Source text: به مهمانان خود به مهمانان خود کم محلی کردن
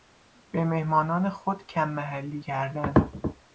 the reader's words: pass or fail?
fail